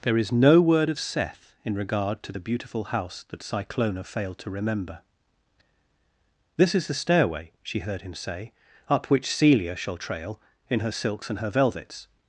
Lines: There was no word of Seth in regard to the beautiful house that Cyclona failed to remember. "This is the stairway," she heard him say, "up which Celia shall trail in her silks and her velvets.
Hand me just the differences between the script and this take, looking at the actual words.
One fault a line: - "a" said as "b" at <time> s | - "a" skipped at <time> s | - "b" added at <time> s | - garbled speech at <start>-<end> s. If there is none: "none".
- "was" said as "is" at 0.2 s